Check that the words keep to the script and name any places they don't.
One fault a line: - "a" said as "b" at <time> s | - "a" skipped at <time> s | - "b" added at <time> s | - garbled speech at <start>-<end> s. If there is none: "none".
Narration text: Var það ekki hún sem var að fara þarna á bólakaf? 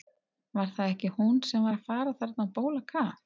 none